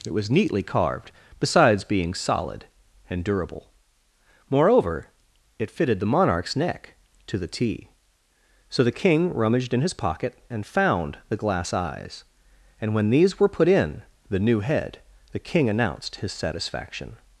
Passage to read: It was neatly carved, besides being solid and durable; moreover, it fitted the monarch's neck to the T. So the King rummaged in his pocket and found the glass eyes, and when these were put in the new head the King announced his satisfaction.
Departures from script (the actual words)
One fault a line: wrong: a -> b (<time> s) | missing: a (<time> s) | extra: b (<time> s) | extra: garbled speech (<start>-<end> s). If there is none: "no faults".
no faults